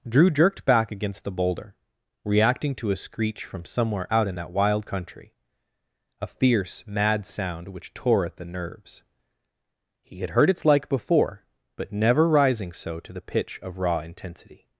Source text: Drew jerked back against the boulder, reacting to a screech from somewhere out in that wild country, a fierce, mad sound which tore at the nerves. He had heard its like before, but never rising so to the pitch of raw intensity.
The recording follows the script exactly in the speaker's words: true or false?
true